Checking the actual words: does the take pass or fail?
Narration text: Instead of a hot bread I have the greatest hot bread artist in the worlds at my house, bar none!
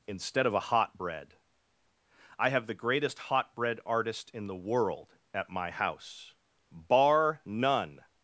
fail